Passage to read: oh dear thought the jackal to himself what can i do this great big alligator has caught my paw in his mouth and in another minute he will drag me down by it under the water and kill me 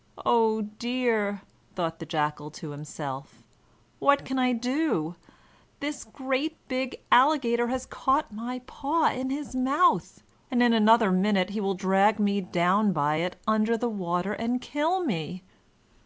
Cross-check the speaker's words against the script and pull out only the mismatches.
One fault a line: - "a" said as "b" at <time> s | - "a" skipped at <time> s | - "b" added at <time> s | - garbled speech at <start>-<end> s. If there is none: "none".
none